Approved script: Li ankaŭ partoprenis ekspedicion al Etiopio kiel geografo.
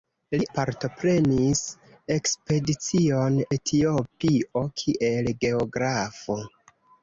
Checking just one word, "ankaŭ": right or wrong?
wrong